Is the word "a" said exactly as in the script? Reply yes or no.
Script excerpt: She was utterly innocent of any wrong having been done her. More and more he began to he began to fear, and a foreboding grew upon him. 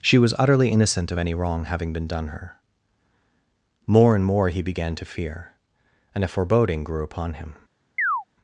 yes